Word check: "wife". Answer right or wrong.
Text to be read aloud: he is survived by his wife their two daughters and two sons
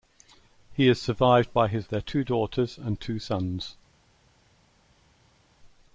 wrong